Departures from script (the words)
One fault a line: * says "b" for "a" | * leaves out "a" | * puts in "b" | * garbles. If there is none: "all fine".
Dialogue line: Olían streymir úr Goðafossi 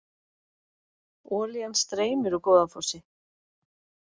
all fine